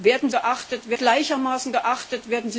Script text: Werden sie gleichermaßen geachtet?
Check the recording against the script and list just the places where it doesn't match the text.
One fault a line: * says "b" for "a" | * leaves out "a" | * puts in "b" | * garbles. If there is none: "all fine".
* says "geachtet" for "sie"